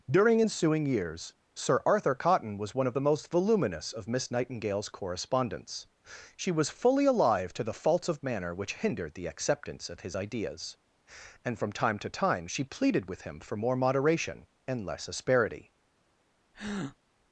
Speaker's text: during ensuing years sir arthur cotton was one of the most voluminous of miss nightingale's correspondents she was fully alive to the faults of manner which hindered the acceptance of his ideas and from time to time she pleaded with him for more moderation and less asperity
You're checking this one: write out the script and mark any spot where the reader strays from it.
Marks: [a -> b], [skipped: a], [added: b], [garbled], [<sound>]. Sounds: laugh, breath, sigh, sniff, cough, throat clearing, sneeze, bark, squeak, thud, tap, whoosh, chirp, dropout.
during ensuing years sir arthur cotton was one of the most voluminous of miss nightingale's correspondents she was fully alive to the faults of manner which hindered the acceptance of his ideas and from time to time she pleaded with him for more moderation and less asperity [breath]